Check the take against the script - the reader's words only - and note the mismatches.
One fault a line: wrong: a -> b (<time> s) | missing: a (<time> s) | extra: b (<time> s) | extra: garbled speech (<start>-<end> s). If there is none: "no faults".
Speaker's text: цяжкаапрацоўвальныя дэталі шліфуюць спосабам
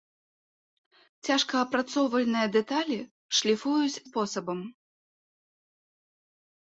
no faults